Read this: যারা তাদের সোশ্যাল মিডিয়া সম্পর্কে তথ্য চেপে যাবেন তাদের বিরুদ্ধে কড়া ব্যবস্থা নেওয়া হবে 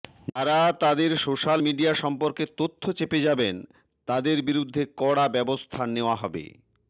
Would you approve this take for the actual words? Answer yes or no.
yes